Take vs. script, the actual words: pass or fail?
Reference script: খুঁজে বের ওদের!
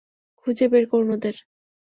fail